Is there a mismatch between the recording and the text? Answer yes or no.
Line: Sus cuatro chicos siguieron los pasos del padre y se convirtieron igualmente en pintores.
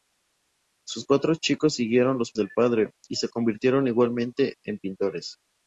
yes